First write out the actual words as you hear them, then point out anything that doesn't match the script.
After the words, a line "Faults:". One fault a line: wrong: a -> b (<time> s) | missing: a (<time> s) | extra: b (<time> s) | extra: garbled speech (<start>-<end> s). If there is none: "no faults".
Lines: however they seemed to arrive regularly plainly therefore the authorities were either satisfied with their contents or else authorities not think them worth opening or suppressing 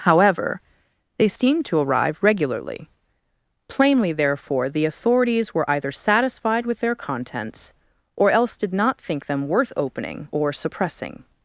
however they seemed to arrive regularly plainly therefore the authorities were either satisfied with their contents or else did not think them worth opening or suppressing
Faults:
wrong: authorities -> did (8.6 s)